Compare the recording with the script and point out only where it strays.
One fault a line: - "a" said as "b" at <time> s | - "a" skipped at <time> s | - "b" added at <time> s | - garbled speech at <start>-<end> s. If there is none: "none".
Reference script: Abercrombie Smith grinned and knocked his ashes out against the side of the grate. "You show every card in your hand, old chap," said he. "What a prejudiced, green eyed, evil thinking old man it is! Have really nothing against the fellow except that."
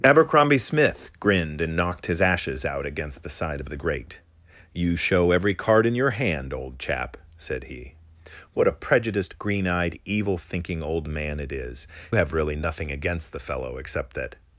none